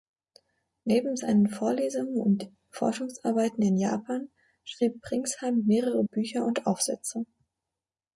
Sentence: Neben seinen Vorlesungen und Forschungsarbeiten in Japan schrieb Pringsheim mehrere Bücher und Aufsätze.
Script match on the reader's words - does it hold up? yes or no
yes